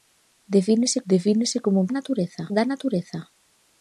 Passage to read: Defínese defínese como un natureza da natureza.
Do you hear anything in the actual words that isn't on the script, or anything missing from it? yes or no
no